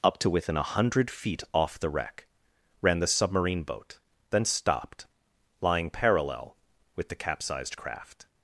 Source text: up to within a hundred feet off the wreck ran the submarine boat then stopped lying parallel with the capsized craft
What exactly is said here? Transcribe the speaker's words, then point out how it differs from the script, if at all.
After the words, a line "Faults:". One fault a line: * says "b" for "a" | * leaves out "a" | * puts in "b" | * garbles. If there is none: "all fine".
up to within a hundred feet off the wreck ran the submarine boat then stopped lying parallel with the capsized craft
Faults:
all fine